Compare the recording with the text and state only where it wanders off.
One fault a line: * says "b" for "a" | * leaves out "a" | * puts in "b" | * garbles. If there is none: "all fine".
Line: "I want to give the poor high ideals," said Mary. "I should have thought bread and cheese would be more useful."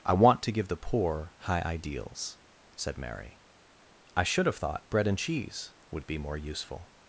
all fine